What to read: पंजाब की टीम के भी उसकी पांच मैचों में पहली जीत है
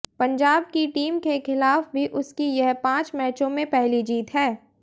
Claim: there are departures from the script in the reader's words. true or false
true